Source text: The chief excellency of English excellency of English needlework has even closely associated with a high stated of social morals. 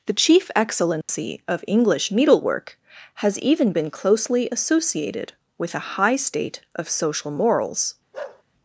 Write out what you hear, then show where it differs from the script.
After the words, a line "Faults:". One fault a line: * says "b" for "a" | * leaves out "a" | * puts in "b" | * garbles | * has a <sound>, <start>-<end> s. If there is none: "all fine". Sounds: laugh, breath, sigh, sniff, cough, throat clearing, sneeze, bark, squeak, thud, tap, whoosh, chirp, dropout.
The chief excellency of English needlework has even been closely associated with a high state of social morals.
Faults:
* has a dropout, 1.0-1.1 s
* leaves out "excellency of English"
* puts in "been"
* says "state" for "stated"
* has a bark, 8.1-8.4 s